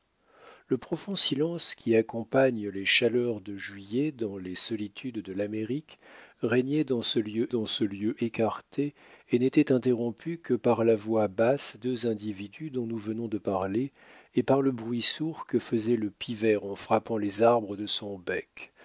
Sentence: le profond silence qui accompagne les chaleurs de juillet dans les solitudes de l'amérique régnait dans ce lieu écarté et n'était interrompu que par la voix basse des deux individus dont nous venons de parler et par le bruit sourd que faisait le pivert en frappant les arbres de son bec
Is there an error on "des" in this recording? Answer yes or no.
yes